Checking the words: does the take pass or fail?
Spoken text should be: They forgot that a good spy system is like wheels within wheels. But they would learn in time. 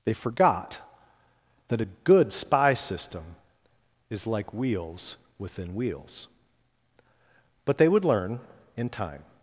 pass